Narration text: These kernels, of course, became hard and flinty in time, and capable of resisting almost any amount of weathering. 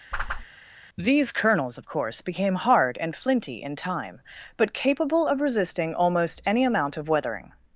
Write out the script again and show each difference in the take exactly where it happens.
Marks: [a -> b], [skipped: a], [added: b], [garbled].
These kernels, of course, became hard and flinty in time, [and -> but] capable of resisting almost any amount of weathering.